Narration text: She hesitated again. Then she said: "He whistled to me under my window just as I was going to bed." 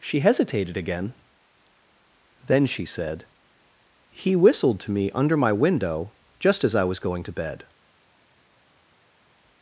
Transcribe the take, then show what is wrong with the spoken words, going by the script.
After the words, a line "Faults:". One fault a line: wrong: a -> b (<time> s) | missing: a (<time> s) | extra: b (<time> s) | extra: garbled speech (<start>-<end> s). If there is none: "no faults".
She hesitated again. Then she said: "He whistled to me under my window just as I was going to bed."
Faults:
no faults